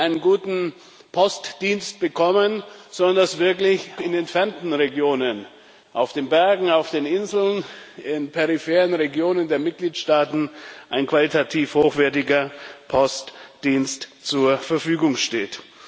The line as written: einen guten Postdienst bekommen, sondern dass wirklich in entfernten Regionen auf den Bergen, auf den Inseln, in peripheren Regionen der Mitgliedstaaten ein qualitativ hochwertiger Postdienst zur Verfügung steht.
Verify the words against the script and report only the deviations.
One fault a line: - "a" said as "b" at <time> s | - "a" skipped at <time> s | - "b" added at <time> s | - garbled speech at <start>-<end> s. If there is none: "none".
none